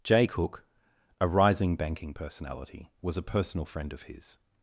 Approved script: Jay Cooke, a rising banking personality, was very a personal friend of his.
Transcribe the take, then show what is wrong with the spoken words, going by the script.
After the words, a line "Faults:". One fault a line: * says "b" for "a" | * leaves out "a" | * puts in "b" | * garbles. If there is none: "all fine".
Jay Cooke, a rising banking personality, was a personal friend of his.
Faults:
* leaves out "very"